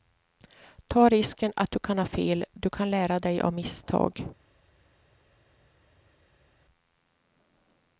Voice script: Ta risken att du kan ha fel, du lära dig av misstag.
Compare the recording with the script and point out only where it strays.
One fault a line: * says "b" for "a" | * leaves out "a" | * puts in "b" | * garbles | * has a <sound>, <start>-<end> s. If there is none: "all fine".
* puts in "kan"